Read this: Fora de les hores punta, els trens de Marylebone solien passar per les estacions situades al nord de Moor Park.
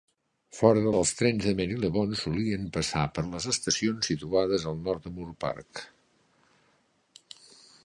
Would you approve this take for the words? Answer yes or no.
no